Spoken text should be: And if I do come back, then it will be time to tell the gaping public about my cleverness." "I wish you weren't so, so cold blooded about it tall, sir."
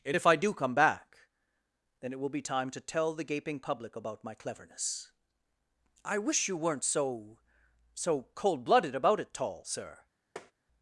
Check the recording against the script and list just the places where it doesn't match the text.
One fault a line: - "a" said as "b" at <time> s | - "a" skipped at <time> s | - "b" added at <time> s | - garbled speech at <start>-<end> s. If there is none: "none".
none